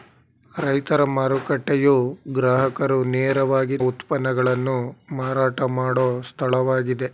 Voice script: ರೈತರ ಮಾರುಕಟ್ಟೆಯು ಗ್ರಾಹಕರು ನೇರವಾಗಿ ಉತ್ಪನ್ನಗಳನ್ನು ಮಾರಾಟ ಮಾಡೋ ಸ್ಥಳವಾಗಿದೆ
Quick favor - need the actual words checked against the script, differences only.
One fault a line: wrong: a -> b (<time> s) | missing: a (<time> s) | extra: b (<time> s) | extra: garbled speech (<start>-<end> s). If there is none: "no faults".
no faults